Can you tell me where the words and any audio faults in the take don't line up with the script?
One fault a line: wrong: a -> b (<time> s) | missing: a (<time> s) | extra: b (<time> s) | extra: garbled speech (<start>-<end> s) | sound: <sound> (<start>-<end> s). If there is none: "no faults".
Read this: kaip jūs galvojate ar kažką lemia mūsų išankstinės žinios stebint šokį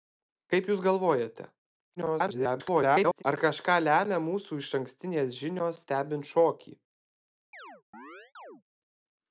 extra: garbled speech (2.0-3.2 s)
sound: chirp (7.5-8.6 s)